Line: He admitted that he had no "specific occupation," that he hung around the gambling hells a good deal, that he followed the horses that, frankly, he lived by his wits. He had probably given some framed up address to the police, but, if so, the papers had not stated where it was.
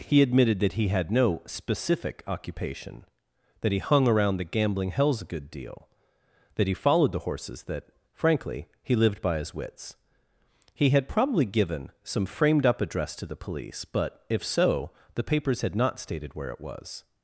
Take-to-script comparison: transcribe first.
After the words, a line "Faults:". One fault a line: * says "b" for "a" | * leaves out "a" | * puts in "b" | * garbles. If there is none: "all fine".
He admitted that he had no "specific occupation," that he hung around the gambling hells a good deal, that he followed the horses that, frankly, he lived by his wits. He had probably given some framed up address to the police, but, if so, the papers had not stated where it was.
Faults:
all fine